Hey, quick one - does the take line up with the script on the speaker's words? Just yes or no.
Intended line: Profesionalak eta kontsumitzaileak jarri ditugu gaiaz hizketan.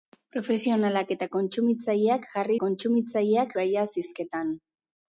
no